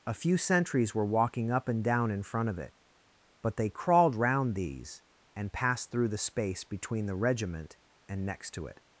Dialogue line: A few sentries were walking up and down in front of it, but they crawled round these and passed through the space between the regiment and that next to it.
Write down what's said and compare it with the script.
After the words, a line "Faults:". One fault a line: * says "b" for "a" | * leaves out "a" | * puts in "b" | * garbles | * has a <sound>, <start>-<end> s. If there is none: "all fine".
A few sentries were walking up and down in front of it, but they crawled round these and passed through the space between the regiment and next to it.
Faults:
* leaves out "that"